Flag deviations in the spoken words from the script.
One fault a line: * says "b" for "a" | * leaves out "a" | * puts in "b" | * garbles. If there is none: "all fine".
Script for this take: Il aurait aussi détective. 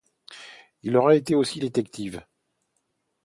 * puts in "été"